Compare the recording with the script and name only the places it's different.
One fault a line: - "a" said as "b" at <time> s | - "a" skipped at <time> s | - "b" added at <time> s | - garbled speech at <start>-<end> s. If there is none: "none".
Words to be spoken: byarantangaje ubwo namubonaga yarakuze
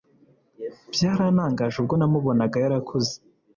none